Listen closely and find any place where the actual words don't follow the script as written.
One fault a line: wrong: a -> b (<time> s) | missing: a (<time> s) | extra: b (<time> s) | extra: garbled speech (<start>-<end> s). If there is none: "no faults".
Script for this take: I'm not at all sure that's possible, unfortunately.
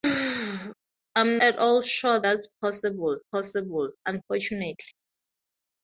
missing: not (1.4 s)
extra: possible (3.3 s)